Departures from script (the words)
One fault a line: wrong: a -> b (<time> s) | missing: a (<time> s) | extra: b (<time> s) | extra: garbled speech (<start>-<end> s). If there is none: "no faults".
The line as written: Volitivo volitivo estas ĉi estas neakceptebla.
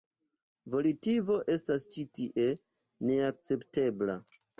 missing: volitivo (1.4 s)
wrong: estas -> tie (2.2 s)